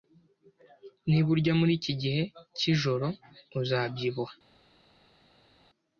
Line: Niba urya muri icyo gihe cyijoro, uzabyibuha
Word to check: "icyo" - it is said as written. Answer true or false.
false